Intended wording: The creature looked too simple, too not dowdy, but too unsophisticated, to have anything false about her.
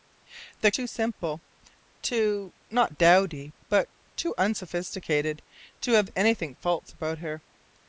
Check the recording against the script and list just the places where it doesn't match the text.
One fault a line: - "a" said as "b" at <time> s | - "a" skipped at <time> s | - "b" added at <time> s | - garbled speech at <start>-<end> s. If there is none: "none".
- "creature looked" skipped at 0.7 s